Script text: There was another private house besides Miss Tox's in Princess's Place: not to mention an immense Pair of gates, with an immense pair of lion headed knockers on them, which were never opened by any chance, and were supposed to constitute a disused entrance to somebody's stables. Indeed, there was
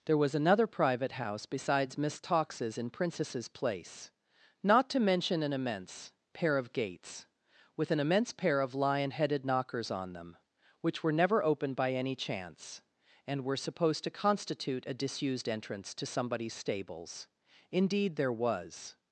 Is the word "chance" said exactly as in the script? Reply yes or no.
yes